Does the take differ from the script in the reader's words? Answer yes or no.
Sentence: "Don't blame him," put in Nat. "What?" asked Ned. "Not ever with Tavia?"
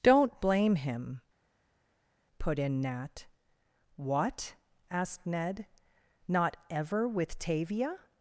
no